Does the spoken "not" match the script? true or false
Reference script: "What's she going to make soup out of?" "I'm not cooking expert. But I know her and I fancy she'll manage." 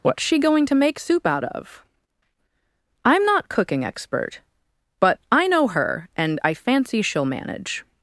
true